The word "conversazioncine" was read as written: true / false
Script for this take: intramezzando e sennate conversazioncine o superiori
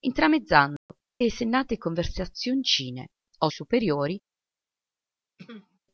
true